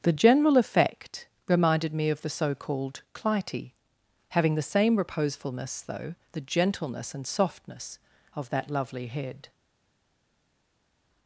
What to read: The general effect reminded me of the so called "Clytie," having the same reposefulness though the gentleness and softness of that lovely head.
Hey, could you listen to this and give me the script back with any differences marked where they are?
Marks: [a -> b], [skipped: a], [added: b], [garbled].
The general effect reminded me of the so called "Clytie," having the same reposefulness though the gentleness and softness of that lovely head.